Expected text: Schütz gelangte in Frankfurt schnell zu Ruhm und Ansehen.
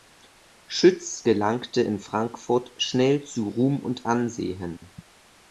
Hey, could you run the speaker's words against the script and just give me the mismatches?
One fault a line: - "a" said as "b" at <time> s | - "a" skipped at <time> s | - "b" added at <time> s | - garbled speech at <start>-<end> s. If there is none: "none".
none